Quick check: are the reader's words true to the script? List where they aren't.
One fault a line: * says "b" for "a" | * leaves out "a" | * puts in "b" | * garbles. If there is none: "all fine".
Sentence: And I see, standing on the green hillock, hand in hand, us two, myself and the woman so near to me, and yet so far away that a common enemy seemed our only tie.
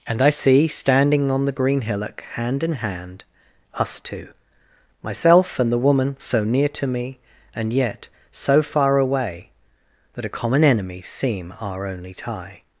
* says "seem" for "seemed"